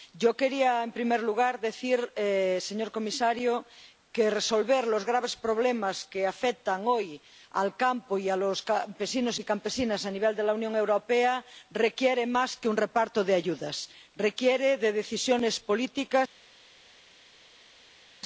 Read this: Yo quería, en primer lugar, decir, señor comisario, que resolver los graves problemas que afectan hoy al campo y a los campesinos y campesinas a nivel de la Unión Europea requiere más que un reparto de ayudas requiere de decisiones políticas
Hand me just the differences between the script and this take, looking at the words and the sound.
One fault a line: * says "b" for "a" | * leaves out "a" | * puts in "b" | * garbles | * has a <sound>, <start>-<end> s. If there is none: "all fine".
all fine